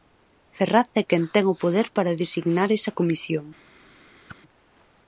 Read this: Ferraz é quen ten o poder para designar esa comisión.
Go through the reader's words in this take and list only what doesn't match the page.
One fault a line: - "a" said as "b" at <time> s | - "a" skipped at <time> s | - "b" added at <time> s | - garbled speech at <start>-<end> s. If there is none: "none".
none